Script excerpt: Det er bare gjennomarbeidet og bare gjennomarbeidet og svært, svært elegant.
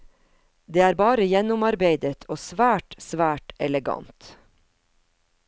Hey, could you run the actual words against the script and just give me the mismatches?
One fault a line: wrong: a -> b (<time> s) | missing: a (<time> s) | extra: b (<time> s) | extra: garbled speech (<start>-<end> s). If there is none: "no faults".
missing: bare gjennomarbeidet og (2.4 s)